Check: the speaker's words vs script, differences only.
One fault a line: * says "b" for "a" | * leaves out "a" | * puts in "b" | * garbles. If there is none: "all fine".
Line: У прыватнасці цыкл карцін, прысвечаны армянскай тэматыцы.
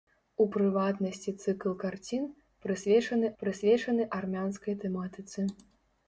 * puts in "прысвечаны"